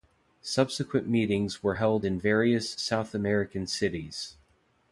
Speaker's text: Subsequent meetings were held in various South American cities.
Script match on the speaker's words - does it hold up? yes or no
yes